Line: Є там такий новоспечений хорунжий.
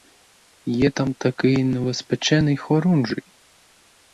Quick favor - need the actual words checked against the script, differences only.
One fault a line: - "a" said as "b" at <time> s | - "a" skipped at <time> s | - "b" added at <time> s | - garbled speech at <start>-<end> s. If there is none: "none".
none